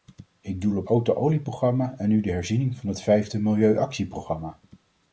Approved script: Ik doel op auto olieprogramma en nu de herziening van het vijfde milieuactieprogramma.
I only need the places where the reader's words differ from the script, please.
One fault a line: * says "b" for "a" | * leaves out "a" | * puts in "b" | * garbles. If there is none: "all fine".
all fine